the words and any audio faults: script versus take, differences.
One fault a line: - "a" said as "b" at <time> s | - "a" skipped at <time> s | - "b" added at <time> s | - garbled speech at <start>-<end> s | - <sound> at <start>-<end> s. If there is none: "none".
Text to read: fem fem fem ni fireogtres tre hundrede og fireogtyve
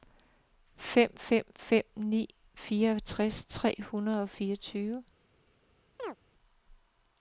- chirp at 6.0-6.2 s